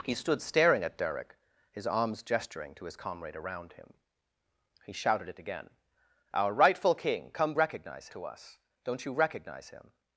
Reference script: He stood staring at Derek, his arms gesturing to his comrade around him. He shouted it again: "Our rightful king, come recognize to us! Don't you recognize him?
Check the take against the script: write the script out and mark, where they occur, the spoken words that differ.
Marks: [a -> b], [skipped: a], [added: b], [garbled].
He stood staring at Derek, his arms gesturing to his comrade around him. He shouted it again: "Our rightful king, come recognize to us! Don't you recognize him?